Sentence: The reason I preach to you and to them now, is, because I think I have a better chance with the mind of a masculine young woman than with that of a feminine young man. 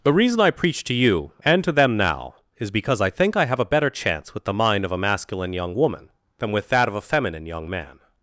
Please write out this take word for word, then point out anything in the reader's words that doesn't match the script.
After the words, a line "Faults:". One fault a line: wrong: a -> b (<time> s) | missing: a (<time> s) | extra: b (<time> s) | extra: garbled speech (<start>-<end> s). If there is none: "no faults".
The reason I preach to you and to them now, is, because I think I have a better chance with the mind of a masculine young woman than with that of a feminine young man.
Faults:
no faults